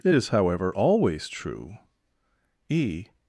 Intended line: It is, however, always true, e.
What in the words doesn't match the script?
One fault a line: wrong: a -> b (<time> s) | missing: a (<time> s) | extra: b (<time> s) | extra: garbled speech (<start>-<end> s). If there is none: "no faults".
no faults